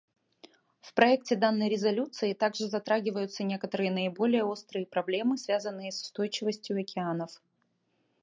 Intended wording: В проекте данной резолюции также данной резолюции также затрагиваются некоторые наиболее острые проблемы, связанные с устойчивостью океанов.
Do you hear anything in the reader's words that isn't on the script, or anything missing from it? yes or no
yes